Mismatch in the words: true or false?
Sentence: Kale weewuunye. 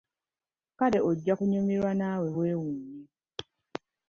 true